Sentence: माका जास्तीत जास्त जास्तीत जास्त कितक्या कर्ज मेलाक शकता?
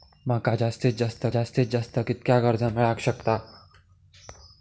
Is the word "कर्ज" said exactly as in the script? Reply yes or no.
yes